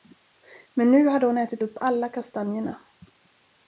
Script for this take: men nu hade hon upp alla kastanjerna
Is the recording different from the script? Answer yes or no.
yes